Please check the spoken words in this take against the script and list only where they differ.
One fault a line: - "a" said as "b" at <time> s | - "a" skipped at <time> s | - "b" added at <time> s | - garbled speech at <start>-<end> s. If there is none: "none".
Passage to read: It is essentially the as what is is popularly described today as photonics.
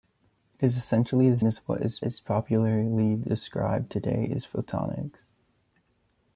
none